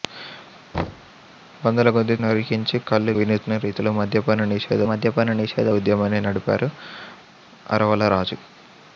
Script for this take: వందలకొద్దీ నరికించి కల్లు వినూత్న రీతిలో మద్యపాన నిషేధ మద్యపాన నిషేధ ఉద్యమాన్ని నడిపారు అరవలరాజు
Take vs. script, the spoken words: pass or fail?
pass